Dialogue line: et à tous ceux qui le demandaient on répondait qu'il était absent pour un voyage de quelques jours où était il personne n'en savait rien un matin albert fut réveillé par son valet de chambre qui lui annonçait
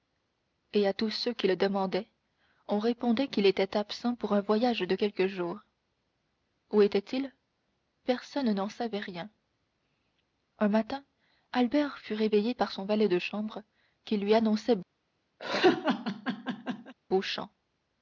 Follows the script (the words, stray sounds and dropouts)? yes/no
no